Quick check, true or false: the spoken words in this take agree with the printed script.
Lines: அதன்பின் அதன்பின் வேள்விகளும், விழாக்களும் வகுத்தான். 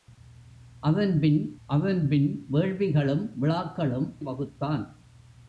true